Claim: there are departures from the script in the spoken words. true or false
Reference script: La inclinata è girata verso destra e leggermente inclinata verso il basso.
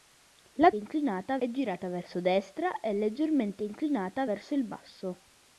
false